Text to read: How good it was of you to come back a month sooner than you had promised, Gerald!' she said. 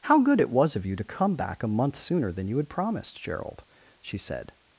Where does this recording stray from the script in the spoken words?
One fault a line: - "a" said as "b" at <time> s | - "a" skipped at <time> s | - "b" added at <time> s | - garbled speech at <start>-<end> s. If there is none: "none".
none